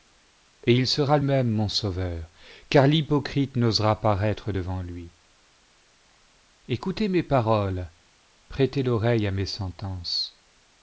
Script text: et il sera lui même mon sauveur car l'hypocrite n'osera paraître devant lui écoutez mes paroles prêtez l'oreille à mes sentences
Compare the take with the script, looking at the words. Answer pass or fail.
fail